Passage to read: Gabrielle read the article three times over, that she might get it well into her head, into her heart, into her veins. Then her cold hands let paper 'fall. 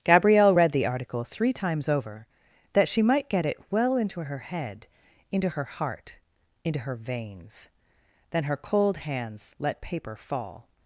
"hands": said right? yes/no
yes